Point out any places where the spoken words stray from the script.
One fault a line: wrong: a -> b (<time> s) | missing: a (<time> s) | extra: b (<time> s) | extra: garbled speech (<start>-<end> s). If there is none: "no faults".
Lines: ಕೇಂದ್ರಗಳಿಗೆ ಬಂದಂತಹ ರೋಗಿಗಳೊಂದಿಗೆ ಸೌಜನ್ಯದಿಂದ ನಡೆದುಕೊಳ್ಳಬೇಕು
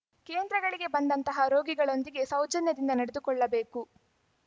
no faults